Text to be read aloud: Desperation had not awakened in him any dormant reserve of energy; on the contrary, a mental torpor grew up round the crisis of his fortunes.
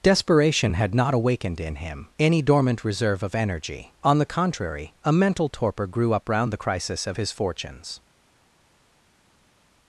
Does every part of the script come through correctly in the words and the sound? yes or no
yes